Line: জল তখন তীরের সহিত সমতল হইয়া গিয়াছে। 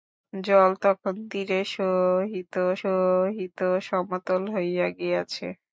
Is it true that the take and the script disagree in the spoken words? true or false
true